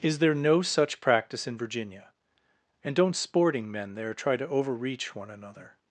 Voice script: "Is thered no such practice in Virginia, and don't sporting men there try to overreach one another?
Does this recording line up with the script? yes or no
no